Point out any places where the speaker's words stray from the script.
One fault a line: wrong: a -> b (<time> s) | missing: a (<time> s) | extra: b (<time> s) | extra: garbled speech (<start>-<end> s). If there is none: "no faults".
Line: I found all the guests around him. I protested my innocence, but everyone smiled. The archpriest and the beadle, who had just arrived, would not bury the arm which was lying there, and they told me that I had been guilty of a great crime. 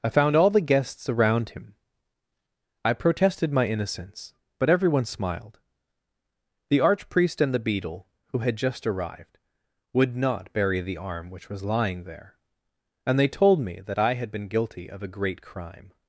no faults